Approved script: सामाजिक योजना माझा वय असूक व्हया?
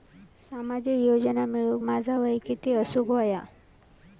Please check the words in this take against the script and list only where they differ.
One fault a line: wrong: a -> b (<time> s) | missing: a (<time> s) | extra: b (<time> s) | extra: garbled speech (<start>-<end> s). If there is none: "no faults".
extra: मिळवूक (1.4 s)
extra: किती (2.4 s)